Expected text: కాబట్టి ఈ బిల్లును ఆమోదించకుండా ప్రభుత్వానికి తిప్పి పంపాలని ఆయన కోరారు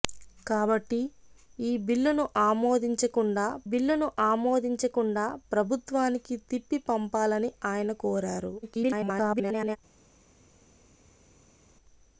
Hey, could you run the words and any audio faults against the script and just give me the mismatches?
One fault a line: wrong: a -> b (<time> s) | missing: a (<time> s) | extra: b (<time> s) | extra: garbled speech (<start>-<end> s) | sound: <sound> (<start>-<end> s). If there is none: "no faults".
extra: బిల్లును ఆమోదించకుండా (3.6 s)
extra: garbled speech (8.6-9.8 s)